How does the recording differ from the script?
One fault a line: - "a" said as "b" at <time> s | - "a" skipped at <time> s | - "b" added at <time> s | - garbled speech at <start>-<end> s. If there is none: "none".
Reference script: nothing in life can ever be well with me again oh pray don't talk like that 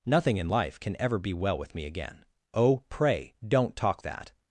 - "like" skipped at 4.0 s